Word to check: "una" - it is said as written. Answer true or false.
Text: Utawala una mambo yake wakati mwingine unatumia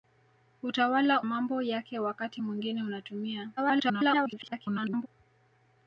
false